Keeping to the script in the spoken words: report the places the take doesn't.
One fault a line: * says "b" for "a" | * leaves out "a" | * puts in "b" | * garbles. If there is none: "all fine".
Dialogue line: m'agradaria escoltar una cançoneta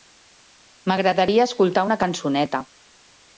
all fine